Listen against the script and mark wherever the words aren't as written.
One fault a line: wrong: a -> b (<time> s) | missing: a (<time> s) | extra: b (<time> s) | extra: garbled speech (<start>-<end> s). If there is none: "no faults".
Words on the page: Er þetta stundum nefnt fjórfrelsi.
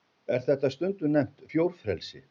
no faults